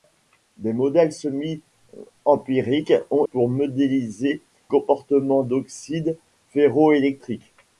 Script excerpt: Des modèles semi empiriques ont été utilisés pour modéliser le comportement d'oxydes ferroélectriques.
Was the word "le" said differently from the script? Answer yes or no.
yes